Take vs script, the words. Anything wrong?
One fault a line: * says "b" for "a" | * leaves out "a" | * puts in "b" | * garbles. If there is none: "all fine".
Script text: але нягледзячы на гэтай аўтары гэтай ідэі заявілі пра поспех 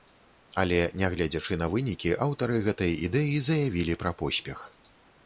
* says "вынікі" for "гэтай"